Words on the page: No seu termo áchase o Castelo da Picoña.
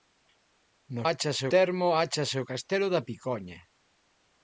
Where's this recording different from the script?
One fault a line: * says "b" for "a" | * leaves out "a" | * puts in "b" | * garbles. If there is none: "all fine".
* says "áchase" for "seu"